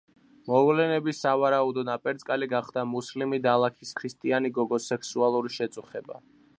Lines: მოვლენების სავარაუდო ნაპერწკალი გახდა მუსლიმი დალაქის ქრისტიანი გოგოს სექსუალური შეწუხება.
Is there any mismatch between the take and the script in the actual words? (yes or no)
no